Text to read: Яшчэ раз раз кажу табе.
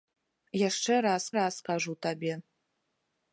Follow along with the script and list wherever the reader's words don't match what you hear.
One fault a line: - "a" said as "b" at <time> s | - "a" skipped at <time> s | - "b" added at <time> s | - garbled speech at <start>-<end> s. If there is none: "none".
none